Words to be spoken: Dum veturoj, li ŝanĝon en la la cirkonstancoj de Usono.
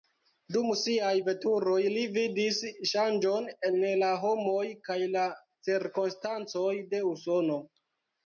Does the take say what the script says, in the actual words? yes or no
no